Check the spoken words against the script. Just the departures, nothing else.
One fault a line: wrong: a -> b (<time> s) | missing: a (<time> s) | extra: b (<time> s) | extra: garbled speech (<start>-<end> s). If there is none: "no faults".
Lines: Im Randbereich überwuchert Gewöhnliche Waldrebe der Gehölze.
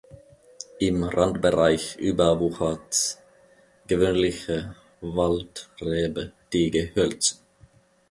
wrong: der -> die (6.5 s)